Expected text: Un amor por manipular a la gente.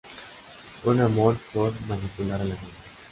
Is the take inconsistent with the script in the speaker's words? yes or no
no